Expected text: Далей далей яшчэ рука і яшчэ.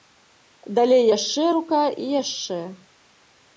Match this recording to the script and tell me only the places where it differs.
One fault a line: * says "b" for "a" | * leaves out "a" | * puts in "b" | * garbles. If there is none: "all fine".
* leaves out "далей"